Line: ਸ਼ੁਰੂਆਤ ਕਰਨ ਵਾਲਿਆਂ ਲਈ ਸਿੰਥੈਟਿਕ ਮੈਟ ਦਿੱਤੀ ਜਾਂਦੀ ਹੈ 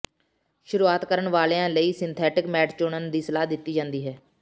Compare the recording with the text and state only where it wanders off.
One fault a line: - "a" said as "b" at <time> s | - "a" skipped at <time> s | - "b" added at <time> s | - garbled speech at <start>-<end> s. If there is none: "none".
- "ਚੁਣਨ ਦੀ ਸਲਾਹ" added at 2.8 s